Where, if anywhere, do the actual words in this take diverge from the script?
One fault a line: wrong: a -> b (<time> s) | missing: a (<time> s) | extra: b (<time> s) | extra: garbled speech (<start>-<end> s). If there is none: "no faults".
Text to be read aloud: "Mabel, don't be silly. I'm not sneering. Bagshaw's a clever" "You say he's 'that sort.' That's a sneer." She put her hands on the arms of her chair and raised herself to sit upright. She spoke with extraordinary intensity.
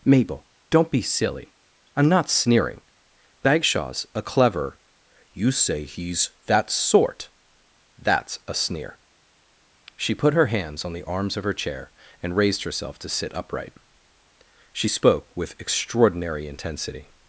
no faults